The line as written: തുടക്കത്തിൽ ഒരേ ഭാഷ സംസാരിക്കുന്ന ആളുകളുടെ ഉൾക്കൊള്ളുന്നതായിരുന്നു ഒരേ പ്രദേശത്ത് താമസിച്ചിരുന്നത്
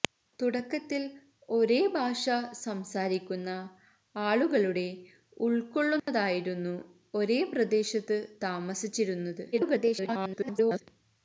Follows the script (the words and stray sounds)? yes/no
no